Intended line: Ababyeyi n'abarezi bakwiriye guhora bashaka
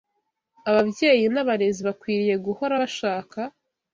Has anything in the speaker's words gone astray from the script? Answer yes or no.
no